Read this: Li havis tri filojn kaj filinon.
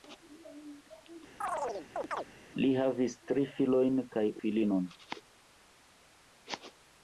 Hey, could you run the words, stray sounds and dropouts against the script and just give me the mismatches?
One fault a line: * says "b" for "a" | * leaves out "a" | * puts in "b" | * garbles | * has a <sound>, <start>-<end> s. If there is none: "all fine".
* has a chirp, 1.4-2.3 s